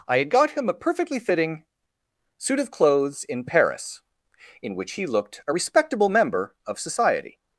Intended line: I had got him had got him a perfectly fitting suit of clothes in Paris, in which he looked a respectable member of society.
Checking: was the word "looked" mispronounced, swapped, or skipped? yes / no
no